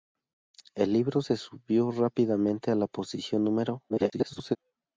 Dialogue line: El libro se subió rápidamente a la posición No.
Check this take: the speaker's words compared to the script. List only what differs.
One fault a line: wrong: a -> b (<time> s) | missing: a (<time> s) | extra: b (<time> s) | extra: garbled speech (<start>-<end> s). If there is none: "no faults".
extra: garbled speech (3.9-4.6 s)